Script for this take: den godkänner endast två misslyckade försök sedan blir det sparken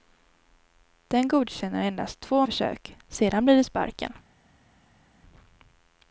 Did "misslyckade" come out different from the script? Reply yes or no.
yes